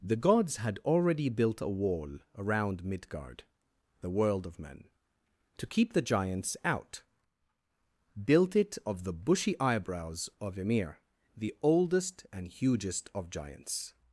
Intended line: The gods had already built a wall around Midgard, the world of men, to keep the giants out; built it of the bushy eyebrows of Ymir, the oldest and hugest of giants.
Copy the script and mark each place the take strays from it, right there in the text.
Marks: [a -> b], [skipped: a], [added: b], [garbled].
The gods had already built a wall around Midgard, the world of men, to keep the giants out; built it of the bushy eyebrows of Ymir, the oldest and hugest of giants.